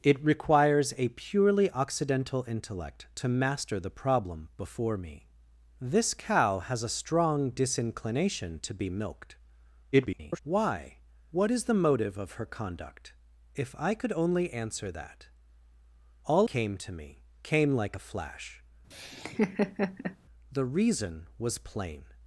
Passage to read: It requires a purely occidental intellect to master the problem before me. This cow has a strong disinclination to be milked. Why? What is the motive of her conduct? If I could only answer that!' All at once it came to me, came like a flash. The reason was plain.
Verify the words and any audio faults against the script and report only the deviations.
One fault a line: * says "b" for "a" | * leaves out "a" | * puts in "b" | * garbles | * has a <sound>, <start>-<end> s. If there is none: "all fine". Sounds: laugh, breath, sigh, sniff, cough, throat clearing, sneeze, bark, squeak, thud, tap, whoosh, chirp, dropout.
* garbles
* leaves out "at once it"
* has a laugh, 18.9-20.2 s